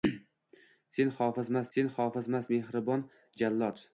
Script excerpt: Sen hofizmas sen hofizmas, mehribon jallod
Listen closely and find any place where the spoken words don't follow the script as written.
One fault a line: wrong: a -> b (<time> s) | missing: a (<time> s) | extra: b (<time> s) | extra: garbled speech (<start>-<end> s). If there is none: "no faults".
no faults